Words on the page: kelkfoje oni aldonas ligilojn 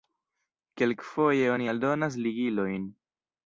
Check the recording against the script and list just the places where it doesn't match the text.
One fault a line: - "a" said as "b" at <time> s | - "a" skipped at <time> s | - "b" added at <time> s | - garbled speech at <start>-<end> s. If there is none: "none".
none